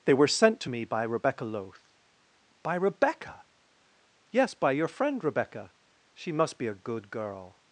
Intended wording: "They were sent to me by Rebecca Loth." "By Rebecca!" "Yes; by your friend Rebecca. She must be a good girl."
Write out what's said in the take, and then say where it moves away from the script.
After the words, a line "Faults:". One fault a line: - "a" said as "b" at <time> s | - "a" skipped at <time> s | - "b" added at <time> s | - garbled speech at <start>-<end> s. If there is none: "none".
"They were sent to me by Rebecca Loth." "By Rebecca!" "Yes; by your friend Rebecca. She must be a good girl."
Faults:
none